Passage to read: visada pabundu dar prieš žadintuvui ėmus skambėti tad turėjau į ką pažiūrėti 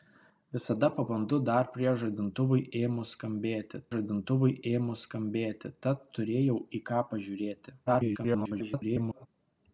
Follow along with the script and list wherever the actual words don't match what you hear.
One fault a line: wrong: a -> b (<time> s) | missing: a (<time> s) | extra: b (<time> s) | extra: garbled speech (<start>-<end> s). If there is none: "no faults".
extra: žadintuvui ėmus skambėti (4.0 s)
extra: garbled speech (7.9-9.3 s)